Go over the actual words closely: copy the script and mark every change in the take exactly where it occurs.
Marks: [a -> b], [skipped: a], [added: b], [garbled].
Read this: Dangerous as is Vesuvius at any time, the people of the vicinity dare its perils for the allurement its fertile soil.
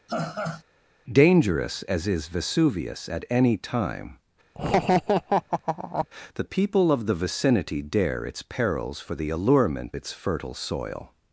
Dangerous as is Vesuvius at any time, the people of the vicinity dare its perils for the allurement its fertile soil.